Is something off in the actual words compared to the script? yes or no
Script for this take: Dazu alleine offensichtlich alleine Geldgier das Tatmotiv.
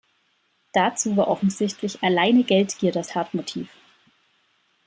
yes